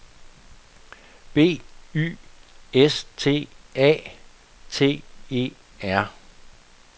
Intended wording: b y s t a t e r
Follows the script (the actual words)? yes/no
yes